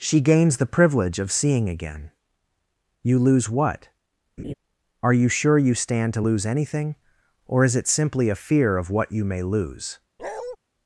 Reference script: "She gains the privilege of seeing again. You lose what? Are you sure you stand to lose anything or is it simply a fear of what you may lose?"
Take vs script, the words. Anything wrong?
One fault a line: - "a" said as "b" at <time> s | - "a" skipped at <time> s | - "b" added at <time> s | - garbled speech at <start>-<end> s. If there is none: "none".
none